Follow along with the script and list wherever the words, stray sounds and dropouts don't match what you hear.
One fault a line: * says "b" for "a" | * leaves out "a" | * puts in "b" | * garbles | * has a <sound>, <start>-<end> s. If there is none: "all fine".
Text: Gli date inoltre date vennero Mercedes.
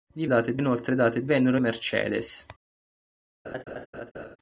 * has a laugh, 3.4-4.4 s